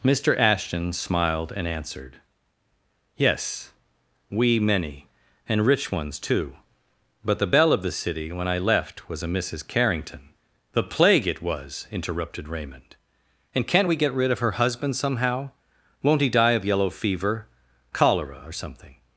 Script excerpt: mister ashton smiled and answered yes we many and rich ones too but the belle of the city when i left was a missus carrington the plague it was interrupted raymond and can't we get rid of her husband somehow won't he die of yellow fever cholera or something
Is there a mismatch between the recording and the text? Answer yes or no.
no